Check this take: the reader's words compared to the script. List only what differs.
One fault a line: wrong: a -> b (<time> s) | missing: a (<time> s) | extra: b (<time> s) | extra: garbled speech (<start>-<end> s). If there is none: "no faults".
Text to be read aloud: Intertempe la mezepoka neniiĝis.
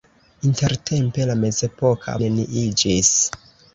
no faults